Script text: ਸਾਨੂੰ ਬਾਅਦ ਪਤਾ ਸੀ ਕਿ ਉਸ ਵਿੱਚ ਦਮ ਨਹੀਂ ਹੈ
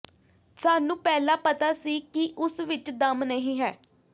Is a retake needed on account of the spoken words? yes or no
yes